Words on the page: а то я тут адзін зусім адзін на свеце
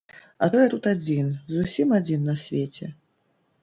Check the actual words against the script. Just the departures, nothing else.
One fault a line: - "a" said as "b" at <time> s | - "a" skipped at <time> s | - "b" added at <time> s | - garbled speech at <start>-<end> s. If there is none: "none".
none